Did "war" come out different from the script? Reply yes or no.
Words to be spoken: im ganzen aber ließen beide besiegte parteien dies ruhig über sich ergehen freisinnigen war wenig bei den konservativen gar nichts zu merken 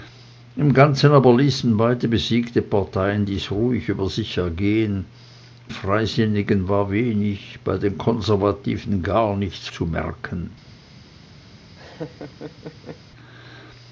no